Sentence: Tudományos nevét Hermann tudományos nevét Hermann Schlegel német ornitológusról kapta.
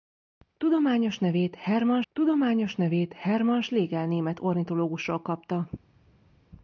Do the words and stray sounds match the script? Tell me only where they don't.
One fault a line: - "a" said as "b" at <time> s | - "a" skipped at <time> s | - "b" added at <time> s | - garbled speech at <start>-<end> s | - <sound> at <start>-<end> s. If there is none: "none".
none